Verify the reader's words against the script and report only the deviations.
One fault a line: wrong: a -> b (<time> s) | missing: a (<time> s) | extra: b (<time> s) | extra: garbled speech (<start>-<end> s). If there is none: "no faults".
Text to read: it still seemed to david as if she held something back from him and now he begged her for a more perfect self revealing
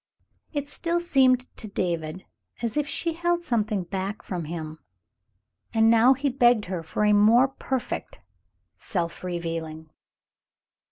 no faults